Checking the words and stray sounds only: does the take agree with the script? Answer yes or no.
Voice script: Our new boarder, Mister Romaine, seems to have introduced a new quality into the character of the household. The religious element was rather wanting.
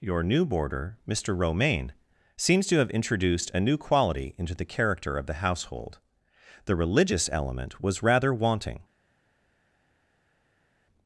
no